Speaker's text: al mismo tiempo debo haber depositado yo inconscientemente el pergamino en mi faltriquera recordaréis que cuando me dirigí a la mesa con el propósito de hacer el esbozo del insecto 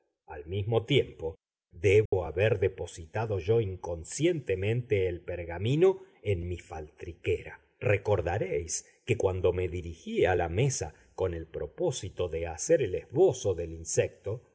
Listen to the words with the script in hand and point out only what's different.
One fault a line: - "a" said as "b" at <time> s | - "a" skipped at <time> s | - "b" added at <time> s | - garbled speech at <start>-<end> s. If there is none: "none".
none